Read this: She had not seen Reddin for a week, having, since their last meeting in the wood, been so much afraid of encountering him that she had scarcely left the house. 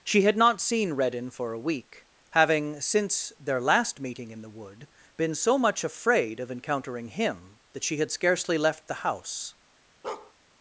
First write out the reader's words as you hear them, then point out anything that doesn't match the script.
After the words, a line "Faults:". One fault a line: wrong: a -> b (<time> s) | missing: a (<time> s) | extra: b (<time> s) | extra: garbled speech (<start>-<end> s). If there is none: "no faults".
She had not seen Reddin for a week, having, since their last meeting in the wood, been so much afraid of encountering him that she had scarcely left the house.
Faults:
no faults